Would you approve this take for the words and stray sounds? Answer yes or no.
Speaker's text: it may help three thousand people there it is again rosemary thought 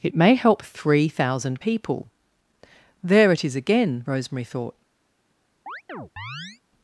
no